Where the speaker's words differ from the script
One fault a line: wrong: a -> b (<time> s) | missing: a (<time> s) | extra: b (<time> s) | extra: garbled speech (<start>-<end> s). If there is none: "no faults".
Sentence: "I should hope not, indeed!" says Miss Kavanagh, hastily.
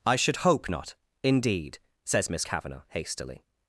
no faults